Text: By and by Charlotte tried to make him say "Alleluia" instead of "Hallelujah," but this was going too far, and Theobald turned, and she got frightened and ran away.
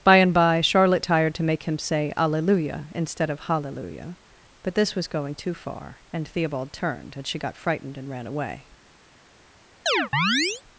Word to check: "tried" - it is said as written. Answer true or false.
false